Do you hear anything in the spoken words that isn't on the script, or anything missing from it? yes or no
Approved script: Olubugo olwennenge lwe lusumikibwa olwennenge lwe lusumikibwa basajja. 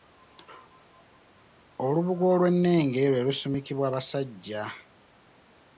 yes